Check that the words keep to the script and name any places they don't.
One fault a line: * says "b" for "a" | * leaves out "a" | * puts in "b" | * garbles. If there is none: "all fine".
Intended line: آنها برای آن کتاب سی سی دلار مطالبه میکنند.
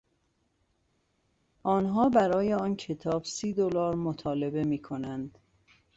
* leaves out "سی"